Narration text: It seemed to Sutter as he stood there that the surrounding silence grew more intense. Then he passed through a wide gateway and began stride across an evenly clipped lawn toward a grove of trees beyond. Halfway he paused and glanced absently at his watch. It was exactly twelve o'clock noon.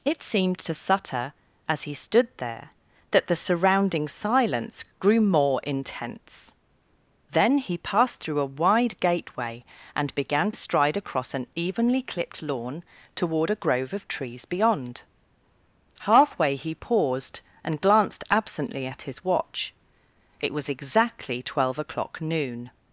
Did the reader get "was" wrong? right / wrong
right